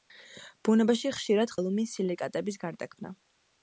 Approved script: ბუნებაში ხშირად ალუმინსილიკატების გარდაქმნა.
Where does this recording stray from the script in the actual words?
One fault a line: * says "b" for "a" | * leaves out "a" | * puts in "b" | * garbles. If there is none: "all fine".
all fine